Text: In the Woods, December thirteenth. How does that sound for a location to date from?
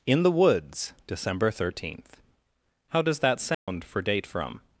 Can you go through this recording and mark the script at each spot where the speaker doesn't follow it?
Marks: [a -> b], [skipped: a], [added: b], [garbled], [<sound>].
In the Woods, December thirteenth. How does that sound [dropout] for [skipped: a location to] date from?